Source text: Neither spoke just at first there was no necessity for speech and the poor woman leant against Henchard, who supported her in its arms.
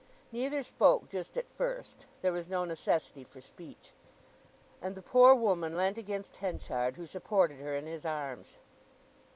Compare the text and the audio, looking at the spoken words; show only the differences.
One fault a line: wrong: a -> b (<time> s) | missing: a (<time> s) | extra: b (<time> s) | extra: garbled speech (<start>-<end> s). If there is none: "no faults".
wrong: its -> his (7.9 s)